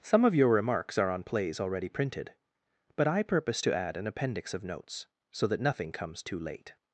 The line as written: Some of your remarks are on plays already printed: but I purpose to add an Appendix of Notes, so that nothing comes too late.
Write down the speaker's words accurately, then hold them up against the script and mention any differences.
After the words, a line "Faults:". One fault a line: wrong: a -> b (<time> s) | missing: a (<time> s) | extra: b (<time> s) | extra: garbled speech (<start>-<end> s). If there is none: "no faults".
Some of your remarks are on plays already printed: but I purpose to add an Appendix of Notes, so that nothing comes too late.
Faults:
no faults